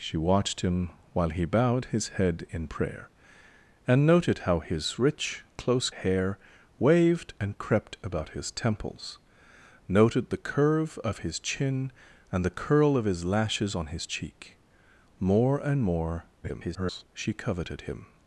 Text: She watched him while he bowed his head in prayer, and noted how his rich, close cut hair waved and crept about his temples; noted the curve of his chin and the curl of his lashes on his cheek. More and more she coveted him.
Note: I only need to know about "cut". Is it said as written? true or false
false